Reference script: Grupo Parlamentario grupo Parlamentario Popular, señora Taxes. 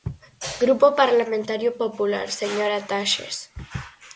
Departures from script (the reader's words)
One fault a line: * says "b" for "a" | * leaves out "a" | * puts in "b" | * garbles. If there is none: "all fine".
* leaves out "grupo Parlamentario"